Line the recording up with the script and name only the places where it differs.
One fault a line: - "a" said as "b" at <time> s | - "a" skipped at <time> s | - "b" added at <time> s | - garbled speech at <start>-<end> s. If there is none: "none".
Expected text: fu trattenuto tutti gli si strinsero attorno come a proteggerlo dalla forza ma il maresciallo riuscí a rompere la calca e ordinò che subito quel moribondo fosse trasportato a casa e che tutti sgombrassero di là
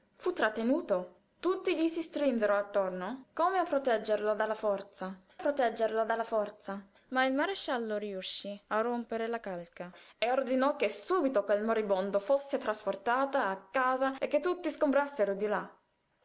- "proteggerlo dalla forza" added at 5.4 s